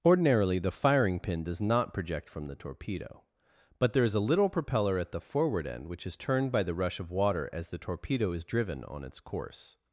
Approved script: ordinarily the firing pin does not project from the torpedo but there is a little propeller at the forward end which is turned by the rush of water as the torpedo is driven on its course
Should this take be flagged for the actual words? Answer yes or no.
no